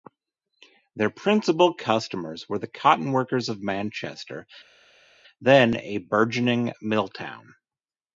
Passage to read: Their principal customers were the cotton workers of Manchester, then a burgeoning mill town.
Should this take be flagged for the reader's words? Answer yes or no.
no